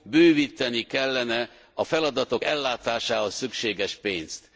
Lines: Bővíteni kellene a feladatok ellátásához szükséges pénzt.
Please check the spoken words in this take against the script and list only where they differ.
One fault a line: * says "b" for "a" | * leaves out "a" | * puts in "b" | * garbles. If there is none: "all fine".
all fine